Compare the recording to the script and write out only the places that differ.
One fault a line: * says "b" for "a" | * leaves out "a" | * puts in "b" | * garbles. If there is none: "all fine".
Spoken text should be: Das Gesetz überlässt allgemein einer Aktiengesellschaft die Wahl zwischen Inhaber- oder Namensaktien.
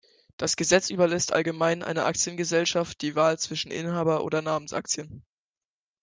all fine